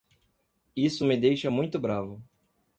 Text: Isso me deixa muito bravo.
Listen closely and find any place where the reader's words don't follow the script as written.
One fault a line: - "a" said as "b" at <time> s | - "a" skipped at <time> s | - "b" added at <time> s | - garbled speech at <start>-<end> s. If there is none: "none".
none